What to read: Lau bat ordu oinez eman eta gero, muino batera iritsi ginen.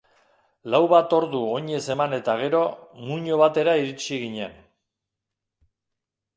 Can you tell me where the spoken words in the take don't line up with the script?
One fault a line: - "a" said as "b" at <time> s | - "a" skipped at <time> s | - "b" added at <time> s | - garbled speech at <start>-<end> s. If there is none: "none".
none